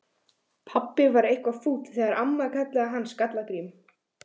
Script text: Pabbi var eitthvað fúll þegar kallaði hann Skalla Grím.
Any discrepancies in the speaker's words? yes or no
yes